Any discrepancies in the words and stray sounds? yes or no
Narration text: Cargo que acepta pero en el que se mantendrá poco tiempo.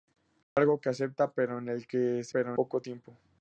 yes